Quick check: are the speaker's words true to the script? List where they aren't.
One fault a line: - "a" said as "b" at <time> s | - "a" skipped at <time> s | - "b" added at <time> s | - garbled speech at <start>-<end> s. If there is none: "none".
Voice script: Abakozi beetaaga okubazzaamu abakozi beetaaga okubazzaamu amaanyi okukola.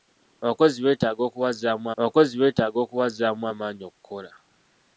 none